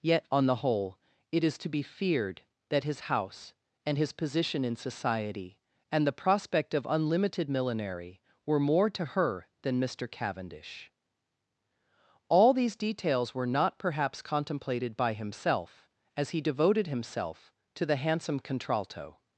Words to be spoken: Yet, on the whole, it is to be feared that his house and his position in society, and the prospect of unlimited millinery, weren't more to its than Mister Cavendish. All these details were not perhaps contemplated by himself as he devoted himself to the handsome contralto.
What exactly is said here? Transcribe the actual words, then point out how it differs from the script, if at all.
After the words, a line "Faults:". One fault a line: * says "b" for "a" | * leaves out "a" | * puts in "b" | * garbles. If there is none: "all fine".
Yet, on the whole, it is to be feared that his house and his position in society, and the prospect of unlimited millinery, were more to her than Mister Cavendish. All these details were not perhaps contemplated by himself as he devoted himself to the handsome contralto.
Faults:
* says "were" for "weren't"
* says "her" for "its"